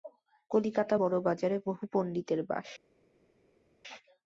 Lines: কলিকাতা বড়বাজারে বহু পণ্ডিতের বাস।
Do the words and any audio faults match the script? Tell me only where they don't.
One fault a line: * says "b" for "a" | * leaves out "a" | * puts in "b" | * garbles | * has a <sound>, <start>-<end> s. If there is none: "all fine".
all fine